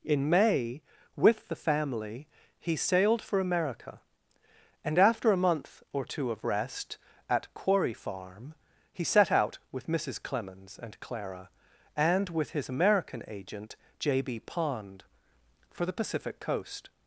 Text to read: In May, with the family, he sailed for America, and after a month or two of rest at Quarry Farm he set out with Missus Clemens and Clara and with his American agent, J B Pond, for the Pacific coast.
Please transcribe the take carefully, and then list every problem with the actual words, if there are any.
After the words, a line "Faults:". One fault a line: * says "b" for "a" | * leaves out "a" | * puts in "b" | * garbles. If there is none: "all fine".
In May, with the family, he sailed for America, and after a month or two of rest at Quarry Farm he set out with Missus Clemens and Clara and with his American agent, J B Pond, for the Pacific coast.
Faults:
all fine